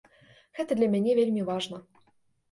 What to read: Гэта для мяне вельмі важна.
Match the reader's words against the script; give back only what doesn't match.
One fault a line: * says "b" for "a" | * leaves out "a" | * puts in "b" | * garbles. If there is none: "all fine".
all fine